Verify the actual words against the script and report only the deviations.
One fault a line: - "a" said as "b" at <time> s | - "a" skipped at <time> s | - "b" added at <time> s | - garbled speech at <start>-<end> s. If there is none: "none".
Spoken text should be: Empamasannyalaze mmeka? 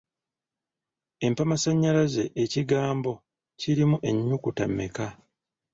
- "ekigambo kirimu ennyukuta" added at 2.4 s